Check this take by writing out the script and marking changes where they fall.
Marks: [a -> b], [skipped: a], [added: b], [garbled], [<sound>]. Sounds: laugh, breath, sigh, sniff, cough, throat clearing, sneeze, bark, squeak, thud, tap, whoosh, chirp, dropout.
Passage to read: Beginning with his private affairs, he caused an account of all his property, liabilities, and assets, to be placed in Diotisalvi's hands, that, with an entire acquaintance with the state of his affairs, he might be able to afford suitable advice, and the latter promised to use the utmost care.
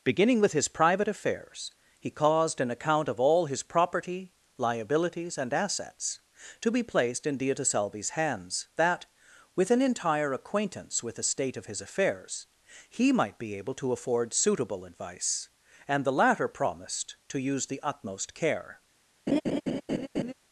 Beginning with his private affairs, he caused an account of all his property, liabilities, and assets, to be placed in Diotisalvi's hands, that, with an entire acquaintance with the state of his affairs, he might be able to afford suitable advice, and the latter promised to use the utmost care. [laugh]